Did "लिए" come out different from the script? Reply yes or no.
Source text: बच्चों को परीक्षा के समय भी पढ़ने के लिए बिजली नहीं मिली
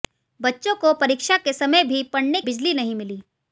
yes